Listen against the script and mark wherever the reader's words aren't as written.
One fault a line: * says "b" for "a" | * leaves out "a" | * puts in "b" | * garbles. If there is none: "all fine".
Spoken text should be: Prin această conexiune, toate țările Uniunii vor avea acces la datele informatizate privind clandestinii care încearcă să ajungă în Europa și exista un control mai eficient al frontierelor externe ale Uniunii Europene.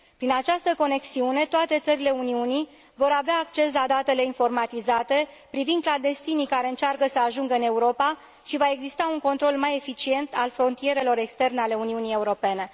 * puts in "va"